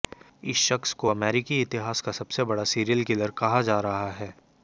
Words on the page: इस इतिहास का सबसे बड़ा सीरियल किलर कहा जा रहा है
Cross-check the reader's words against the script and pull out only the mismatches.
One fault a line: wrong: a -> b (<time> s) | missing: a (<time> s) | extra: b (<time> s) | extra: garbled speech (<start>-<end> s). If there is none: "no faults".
extra: शख्स को अमेरिकी (0.6 s)